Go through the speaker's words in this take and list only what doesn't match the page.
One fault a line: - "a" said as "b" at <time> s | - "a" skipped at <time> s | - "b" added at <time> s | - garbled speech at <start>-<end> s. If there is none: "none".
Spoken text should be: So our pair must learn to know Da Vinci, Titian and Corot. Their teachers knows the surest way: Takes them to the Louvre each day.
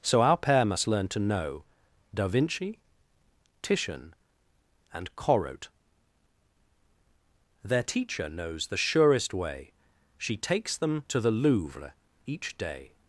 - "teachers" said as "teacher" at 7.8 s
- "She" added at 10.2 s